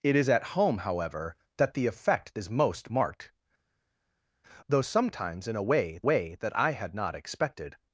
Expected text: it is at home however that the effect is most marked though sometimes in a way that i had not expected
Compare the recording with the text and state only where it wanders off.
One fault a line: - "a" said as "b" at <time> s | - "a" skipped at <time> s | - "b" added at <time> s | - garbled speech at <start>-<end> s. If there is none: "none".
- "way" added at 6.0 s